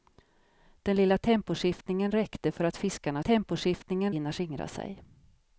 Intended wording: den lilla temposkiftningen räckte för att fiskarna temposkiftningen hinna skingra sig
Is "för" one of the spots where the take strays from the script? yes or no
no